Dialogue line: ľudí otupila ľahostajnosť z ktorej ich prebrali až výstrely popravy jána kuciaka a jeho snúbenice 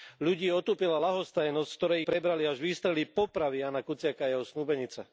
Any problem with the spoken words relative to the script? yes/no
yes